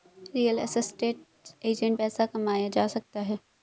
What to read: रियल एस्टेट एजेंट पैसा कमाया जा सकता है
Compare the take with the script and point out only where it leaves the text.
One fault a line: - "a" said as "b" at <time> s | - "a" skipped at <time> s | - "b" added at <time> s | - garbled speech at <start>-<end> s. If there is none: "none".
none